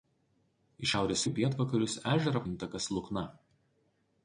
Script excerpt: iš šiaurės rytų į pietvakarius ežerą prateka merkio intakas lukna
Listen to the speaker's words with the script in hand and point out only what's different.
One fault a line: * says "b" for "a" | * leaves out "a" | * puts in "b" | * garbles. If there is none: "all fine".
* leaves out "rytų"
* leaves out "prateka merkio"